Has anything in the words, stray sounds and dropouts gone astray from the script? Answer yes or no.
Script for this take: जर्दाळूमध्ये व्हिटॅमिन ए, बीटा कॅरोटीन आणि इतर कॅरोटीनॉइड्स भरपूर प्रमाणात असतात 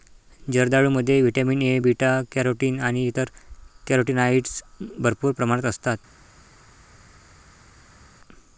no